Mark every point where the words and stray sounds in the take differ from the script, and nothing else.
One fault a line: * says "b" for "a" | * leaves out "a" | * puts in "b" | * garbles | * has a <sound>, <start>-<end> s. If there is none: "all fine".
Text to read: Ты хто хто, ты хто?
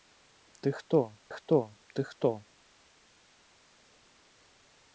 all fine